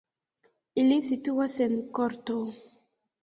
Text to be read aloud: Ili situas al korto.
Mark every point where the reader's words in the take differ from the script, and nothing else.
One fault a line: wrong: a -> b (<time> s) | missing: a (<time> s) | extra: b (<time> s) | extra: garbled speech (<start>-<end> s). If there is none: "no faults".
wrong: al -> en (1.7 s)